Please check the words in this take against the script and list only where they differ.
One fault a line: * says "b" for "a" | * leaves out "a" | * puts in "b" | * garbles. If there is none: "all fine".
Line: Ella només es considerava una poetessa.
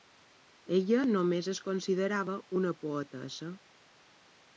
all fine